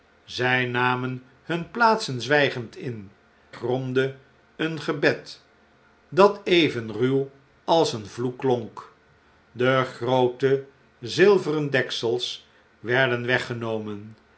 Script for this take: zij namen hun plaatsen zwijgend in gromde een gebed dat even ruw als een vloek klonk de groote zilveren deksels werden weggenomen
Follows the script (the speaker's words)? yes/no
yes